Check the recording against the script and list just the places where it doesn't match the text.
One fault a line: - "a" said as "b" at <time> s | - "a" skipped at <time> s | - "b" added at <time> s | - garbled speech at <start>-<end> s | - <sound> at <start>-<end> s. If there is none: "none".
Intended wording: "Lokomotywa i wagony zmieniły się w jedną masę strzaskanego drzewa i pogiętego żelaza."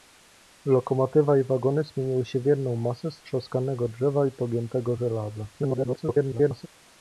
- garbled speech at 5.5-6.7 s